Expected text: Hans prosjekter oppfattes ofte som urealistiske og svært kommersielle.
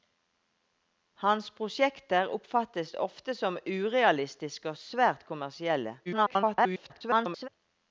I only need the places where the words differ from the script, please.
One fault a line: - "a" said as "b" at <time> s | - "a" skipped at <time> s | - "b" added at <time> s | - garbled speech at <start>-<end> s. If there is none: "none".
- garbled speech at 6.0-7.5 s